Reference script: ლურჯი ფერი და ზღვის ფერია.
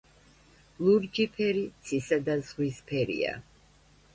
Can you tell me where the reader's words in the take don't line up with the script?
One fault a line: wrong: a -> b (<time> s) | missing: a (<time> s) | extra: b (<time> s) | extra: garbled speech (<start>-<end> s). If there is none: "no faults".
extra: ცისა (1.9 s)